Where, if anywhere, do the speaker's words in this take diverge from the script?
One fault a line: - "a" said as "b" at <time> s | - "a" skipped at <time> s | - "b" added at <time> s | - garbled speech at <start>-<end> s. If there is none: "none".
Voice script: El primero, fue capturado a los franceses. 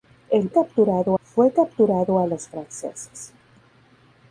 - "primero" said as "capturado" at 0.5 s